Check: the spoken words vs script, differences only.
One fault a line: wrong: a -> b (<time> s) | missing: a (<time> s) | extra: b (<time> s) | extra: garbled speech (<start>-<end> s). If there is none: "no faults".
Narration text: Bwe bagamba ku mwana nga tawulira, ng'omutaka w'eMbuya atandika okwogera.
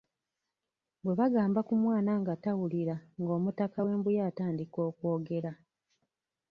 no faults